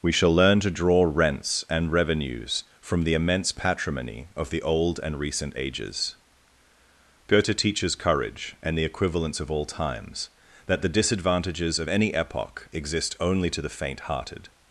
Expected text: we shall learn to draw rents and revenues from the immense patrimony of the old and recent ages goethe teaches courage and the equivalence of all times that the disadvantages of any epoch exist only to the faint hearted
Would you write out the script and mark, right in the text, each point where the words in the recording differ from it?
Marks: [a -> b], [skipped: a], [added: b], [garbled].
we shall learn to draw rents and revenues from the immense patrimony of the old and recent ages goethe teaches courage and the equivalence of all times that the disadvantages of any epoch exist only to the faint hearted